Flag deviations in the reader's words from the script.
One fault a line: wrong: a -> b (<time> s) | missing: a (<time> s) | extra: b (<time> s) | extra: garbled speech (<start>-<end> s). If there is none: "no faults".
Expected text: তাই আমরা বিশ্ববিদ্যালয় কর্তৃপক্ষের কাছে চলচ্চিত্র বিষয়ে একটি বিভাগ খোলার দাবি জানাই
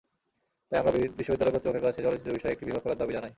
no faults